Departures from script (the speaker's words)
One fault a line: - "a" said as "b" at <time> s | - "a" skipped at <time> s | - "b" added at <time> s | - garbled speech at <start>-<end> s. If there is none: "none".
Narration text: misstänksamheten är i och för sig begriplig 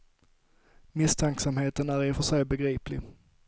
none